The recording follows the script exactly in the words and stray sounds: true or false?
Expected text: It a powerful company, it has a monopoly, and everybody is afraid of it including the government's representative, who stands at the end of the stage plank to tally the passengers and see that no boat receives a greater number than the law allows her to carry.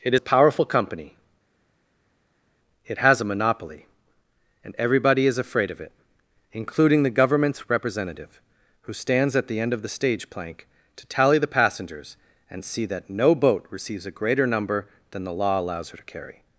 true